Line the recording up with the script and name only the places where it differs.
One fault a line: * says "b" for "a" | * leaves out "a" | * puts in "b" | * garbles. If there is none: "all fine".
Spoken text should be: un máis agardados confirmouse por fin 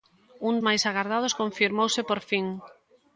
all fine